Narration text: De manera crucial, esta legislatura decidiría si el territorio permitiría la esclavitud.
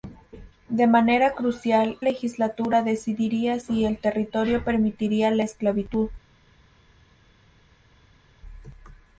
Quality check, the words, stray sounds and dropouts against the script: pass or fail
fail